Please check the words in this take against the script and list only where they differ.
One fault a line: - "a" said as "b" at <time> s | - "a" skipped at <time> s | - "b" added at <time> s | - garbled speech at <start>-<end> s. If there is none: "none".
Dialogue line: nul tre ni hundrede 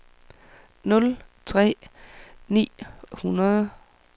none